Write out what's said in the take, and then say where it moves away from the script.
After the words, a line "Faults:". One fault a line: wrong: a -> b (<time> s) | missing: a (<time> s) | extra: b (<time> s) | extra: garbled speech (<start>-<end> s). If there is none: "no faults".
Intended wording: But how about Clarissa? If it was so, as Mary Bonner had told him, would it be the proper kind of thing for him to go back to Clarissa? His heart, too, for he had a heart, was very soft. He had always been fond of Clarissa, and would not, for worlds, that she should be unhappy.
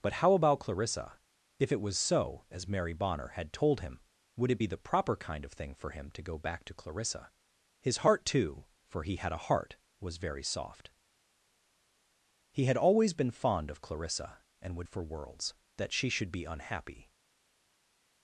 But how about Clarissa? If it was so, as Mary Bonner had told him, would it be the proper kind of thing for him to go back to Clarissa? His heart, too, for he had a heart, was very soft. He had always been fond of Clarissa, and would for worlds, that she should be unhappy.
Faults:
missing: not (14.9 s)